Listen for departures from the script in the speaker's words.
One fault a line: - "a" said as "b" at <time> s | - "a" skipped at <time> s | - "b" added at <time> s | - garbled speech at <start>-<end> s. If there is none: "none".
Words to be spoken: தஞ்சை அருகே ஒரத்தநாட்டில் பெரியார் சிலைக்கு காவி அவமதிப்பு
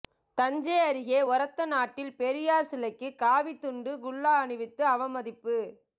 - "துண்டு குல்லா அணிவித்து" added at 3.6 s